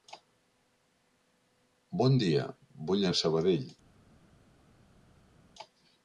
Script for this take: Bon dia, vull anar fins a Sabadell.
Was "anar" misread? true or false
true